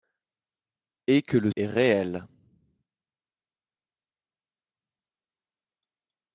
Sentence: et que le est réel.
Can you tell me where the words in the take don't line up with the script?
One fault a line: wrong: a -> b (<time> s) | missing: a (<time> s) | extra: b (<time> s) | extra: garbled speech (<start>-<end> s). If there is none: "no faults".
no faults